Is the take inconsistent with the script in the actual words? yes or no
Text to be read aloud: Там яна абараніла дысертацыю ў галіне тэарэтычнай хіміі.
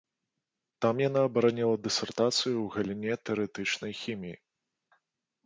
no